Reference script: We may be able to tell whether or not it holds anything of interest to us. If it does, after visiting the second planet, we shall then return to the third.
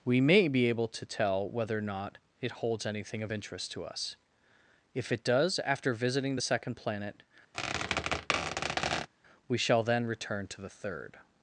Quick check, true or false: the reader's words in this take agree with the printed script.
true